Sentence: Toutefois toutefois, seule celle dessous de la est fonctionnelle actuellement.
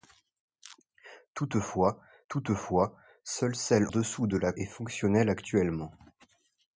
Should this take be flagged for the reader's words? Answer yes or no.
no